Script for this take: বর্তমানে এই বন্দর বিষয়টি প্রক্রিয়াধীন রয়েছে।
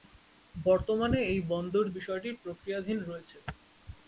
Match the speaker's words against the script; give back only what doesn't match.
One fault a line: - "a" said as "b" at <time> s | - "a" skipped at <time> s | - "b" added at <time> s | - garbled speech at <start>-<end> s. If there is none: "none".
none